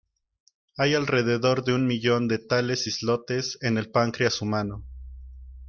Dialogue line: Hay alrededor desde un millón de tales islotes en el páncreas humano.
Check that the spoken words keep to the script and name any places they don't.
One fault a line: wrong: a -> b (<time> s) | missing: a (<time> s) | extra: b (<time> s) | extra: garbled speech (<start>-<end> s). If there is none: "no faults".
wrong: desde -> de (1.6 s)